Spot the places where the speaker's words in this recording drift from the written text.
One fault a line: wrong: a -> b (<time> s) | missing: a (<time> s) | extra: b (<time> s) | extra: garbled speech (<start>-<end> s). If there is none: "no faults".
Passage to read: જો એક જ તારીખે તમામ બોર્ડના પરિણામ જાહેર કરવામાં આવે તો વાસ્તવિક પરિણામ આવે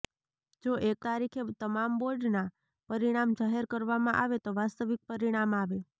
missing: જ (1.0 s)